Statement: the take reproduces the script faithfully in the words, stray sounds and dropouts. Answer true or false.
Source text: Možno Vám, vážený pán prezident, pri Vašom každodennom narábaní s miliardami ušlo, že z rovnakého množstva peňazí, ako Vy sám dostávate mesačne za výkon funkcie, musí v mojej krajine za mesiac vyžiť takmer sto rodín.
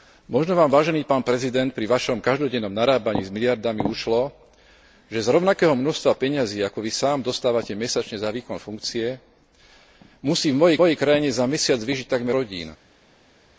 false